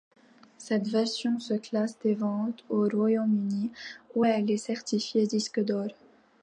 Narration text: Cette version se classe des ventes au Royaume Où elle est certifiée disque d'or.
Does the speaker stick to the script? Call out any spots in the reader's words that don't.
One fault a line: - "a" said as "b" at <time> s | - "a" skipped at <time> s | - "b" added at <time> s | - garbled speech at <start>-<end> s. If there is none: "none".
- "Uni" added at 3.4 s